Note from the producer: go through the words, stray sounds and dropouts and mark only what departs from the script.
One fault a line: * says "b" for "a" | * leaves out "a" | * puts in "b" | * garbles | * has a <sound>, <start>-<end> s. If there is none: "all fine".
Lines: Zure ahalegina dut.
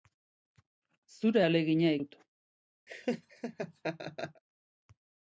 * has a laugh, 2.9-4.4 s